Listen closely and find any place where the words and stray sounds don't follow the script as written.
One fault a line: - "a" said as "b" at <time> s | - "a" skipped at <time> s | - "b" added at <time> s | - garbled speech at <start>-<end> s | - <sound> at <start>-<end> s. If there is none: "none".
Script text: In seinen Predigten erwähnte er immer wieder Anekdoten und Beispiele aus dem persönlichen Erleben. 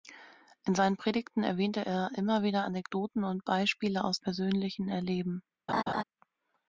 - "dem" skipped at 4.2 s
- laugh at 5.7-6.0 s